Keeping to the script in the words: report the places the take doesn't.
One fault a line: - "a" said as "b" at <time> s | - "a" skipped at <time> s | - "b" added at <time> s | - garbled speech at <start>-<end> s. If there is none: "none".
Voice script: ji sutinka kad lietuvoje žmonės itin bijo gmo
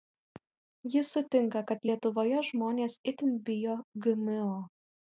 none